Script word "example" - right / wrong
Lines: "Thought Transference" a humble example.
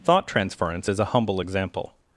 right